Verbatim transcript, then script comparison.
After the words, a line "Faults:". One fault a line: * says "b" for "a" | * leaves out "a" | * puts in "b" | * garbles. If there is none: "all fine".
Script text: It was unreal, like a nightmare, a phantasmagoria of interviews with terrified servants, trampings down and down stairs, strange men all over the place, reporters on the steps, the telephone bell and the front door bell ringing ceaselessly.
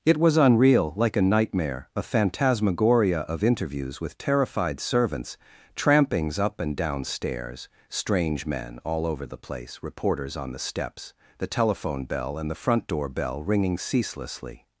It was unreal, like a nightmare, a phantasmagoria of interviews with terrified servants, trampings up and down stairs, strange men all over the place, reporters on the steps, the telephone bell and the front door bell ringing ceaselessly.
Faults:
* says "up" for "down"